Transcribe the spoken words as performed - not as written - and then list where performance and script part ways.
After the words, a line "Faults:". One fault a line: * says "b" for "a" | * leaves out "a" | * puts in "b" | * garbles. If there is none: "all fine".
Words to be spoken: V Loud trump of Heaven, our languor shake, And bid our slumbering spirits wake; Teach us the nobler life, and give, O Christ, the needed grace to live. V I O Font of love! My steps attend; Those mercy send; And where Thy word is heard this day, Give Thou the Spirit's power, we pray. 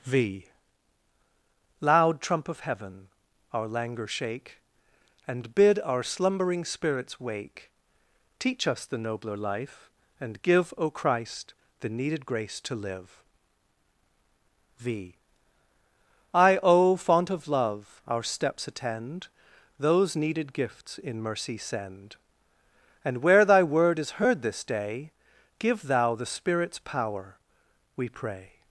V Loud trump of Heaven, our languor shake, And bid our slumbering spirits wake; Teach us the nobler life, and give, O Christ, the needed grace to live. V I O Font of love! Our steps attend; Those needed gifts in mercy send; And where Thy word is heard this day, Give Thou the Spirit's power, we pray.
Faults:
* says "Our" for "My"
* puts in "needed gifts in"